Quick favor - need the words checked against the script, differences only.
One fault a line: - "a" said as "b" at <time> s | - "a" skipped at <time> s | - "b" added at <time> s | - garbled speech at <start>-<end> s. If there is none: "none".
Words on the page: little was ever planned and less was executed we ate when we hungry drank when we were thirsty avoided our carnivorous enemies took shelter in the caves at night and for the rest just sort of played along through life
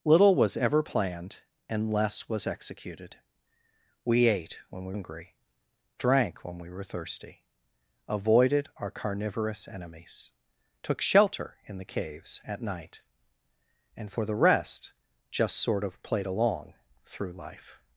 none